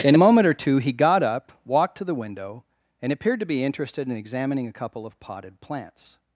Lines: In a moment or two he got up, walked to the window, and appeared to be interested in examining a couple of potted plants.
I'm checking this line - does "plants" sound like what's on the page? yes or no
yes